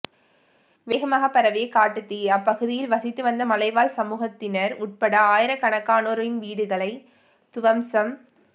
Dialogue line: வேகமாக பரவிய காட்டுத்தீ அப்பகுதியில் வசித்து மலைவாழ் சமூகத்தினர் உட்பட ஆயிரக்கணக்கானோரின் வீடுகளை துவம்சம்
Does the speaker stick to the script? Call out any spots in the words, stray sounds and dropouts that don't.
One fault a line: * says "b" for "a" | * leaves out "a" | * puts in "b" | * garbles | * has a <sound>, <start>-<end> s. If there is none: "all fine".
* puts in "வந்த"